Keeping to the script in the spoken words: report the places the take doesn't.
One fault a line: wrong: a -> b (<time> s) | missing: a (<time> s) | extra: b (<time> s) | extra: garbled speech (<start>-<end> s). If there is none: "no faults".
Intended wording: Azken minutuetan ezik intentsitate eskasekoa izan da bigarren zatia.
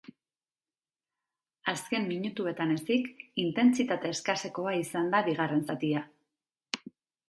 no faults